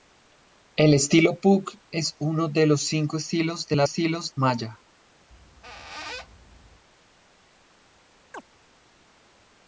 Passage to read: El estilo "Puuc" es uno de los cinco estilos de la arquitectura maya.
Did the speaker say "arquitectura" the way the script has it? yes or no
no